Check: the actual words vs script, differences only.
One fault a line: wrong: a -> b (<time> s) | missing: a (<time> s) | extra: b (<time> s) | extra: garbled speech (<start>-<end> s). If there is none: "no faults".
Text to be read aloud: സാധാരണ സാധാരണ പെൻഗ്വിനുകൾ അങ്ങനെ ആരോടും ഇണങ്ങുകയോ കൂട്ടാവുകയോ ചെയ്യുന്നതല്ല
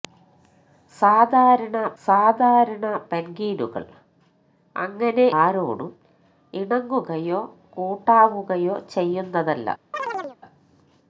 no faults